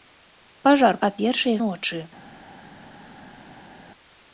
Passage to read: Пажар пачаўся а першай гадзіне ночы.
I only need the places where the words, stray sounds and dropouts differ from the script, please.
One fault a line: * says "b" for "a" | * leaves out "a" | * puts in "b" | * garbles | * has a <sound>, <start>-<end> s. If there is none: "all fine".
* leaves out "пачаўся"
* leaves out "гадзіне"